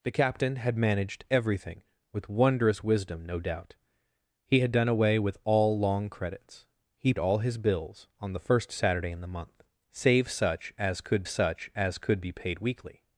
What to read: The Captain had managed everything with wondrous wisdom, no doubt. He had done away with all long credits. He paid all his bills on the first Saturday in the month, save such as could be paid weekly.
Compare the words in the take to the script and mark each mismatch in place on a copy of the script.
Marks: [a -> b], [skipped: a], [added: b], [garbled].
The Captain had managed everything with wondrous wisdom, no doubt. He had done away with all long credits. He [skipped: paid] all his bills on the first Saturday in the month, save such as could [added: such as could] be paid weekly.